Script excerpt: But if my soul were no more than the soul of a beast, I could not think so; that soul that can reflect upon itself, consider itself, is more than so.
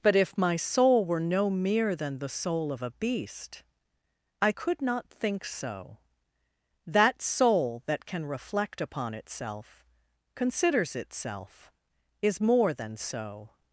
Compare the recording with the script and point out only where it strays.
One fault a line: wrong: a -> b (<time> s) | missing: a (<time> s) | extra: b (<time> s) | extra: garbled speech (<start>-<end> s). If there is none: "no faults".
wrong: more -> mere (1.5 s)
wrong: consider -> considers (10.3 s)